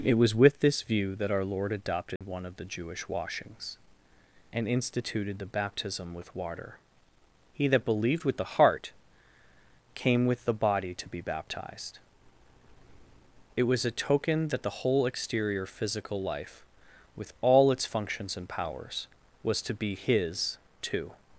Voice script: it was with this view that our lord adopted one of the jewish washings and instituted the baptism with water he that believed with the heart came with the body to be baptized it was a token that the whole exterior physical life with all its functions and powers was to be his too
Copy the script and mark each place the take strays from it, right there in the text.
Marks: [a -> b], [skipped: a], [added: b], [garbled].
it was with this view that our lord adopted one of the jewish washings and instituted the baptism with water he that believed with the heart came with the body to be baptized it was a token that the whole exterior physical life with all its functions and powers was to be his too